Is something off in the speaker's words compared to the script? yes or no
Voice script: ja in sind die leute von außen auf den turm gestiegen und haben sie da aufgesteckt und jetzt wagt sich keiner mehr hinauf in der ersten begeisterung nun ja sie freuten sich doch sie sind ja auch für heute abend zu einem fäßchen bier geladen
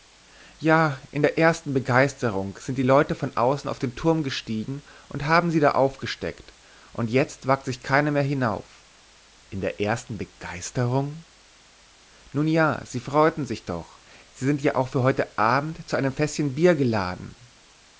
yes